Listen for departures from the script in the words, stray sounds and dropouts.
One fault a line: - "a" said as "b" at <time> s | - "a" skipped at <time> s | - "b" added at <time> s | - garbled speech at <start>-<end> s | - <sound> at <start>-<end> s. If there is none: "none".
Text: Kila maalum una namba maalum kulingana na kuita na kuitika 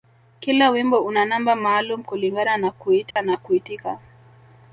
- "maalum" said as "wimbo" at 0.7 s
- dropout at 3.1-3.2 s